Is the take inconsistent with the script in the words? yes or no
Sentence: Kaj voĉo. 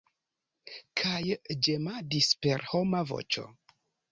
yes